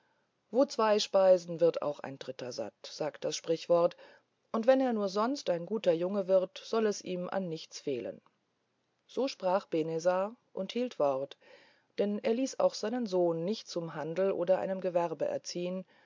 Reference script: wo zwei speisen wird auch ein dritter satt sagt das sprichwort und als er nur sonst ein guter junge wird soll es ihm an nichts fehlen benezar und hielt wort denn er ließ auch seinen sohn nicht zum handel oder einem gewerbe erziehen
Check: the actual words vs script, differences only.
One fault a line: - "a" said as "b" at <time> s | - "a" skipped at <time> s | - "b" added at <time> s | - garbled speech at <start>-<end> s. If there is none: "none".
- "als" said as "wenn" at 4.7 s
- "so sprach" added at 9.1 s